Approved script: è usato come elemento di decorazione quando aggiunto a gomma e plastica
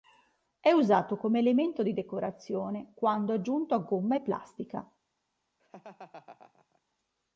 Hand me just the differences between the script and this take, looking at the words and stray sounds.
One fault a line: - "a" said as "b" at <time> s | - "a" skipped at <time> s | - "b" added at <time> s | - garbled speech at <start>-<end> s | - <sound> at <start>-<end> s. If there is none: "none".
- laugh at 5.6-6.8 s